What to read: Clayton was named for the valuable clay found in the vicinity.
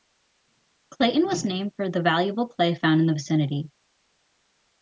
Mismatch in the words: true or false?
false